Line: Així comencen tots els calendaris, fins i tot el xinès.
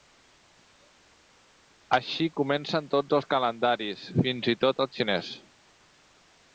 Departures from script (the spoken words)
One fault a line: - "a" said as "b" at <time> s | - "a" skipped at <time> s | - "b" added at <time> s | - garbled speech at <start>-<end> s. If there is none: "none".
none